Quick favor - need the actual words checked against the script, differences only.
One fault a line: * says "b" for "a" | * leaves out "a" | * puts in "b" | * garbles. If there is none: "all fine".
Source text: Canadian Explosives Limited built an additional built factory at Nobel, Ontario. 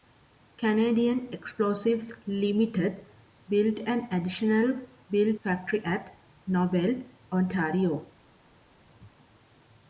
all fine